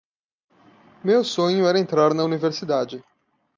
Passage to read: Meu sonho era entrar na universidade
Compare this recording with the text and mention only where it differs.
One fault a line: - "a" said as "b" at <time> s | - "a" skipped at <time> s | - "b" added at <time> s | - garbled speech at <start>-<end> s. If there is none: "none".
none